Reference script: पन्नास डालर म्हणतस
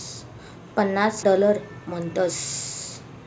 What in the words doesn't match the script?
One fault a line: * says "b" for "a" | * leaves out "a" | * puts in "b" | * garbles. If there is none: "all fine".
all fine